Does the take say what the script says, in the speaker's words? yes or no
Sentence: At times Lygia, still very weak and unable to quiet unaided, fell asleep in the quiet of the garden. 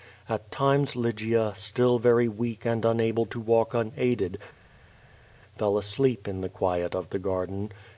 no